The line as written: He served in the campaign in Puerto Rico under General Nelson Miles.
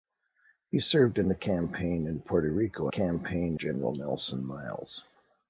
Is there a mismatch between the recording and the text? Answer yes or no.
yes